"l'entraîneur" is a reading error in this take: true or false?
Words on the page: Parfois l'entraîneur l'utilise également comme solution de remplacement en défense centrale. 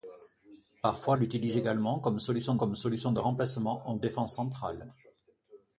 true